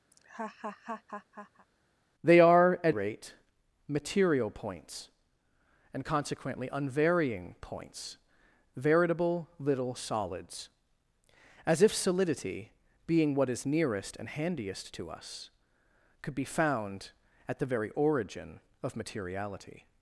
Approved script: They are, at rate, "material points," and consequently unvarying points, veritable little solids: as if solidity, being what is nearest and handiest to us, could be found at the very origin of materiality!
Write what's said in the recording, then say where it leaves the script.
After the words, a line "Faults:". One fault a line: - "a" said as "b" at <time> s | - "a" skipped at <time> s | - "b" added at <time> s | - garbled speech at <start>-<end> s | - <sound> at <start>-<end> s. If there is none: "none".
They are, at rate, "material points," and consequently unvarying points, veritable little solids: as if solidity, being what is nearest and handiest to us, could be found at the very origin of materiality!
Faults:
- laugh at 0.1-1.7 s